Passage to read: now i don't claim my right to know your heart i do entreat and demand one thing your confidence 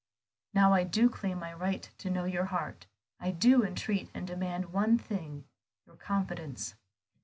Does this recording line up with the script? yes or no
no